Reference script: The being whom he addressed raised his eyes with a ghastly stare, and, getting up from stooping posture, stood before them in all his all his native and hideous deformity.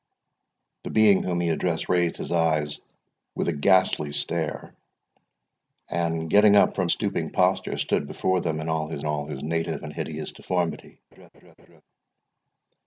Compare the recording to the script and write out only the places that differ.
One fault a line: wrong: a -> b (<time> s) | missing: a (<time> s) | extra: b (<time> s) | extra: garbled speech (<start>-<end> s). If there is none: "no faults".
no faults